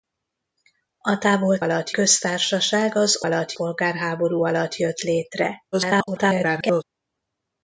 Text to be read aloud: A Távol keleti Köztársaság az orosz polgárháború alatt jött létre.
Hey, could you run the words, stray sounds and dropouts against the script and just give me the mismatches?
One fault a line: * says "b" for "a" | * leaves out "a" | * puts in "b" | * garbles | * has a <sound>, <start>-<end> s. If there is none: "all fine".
* says "alatt" for "keleti"
* says "alatt" for "orosz"
* garbles